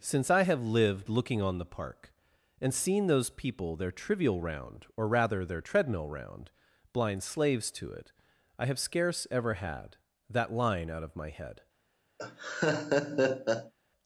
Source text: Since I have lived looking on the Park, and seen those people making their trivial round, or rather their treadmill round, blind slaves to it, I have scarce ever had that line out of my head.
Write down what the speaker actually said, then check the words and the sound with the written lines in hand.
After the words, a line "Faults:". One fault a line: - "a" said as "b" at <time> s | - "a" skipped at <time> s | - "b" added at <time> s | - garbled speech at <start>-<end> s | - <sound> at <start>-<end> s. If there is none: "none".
Since I have lived looking on the Park, and seen those people their trivial round, or rather their treadmill round, blind slaves to it, I have scarce ever had that line out of my head.
Faults:
- "making" skipped at 3.8 s
- laugh at 12.2-13.7 s